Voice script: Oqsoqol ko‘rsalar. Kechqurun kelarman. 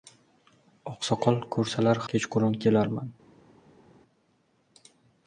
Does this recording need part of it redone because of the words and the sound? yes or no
no